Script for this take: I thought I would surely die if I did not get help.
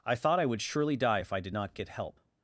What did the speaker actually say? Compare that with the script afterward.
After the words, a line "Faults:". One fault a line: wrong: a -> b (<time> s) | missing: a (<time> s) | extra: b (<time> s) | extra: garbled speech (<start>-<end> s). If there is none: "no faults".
I thought I would surely die if I did not get help.
Faults:
no faults